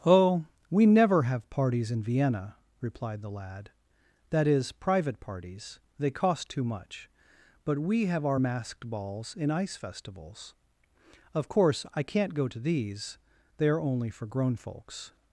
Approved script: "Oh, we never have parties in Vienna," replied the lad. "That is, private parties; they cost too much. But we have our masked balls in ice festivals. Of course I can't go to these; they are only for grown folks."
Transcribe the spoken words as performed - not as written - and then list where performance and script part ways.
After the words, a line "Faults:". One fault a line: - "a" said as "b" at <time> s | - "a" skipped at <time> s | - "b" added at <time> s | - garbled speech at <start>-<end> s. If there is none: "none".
"Oh, we never have parties in Vienna," replied the lad. "That is, private parties; they cost too much. But we have our masked balls in ice festivals. Of course I can't go to these; they are only for grown folks."
Faults:
none